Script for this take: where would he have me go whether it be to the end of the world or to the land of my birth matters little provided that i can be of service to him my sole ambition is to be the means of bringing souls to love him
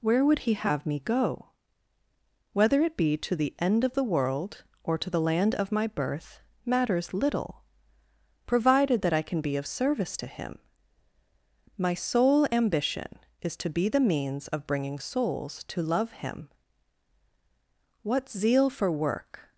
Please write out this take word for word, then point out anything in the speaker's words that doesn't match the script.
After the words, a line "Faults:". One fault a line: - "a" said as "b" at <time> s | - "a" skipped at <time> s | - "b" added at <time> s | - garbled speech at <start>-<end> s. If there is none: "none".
where would he have me go whether it be to the end of the world or to the land of my birth matters little provided that i can be of service to him my sole ambition is to be the means of bringing souls to love him what zeal for work
Faults:
- "what zeal for work" added at 18.0 s